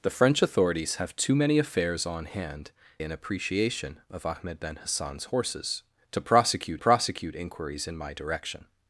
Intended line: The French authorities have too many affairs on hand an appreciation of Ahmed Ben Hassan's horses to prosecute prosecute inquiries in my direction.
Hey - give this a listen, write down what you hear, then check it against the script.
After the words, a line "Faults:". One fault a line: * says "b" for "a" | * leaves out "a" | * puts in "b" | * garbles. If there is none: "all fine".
The French authorities have too many affairs on hand an appreciation of Ahmed Ben Hassan's horses to prosecute prosecute inquiries in my direction.
Faults:
all fine